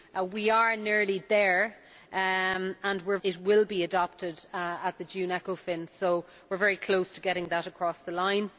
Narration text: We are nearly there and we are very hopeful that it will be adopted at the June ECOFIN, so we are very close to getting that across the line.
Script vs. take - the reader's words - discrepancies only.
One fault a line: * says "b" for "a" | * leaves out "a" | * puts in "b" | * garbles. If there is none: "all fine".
* leaves out "very hopeful that"